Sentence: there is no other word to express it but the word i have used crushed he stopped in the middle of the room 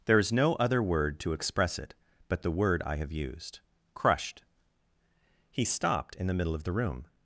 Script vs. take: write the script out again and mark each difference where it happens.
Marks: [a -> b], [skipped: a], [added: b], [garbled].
there is no other word to express it but the word i have used crushed he stopped in the middle of the room